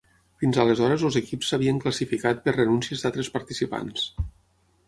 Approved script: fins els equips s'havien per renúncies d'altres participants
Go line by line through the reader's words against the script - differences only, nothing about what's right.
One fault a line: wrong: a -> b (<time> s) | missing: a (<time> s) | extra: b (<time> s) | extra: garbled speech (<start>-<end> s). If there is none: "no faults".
extra: aleshores (0.6 s)
extra: classificat (1.9 s)